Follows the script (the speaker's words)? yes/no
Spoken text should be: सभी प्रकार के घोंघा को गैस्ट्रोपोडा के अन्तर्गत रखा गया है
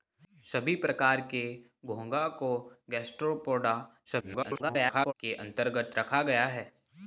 no